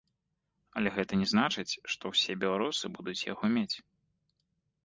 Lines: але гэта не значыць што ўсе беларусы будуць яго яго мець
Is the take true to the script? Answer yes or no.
no